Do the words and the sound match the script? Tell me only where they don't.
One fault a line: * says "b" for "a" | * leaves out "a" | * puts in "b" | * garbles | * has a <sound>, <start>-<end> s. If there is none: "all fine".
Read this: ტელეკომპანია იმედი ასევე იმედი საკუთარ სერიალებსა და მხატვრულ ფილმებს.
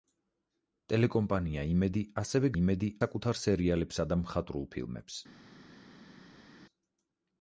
all fine